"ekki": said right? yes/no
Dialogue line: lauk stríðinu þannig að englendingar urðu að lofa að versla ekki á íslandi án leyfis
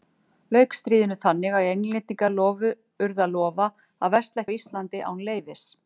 no